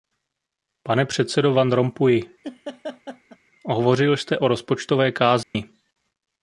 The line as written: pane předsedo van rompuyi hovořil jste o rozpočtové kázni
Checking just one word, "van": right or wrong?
right